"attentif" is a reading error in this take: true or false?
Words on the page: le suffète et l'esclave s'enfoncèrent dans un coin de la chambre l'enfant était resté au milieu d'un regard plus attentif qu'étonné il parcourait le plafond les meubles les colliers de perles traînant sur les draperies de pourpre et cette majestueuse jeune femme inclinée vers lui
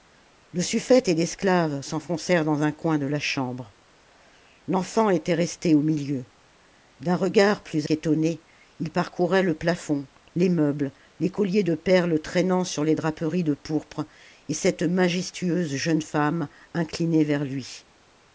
true